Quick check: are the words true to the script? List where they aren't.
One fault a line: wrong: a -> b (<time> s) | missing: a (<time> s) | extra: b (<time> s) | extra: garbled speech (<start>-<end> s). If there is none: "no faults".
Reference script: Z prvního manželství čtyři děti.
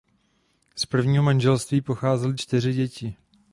extra: pocházely (1.8 s)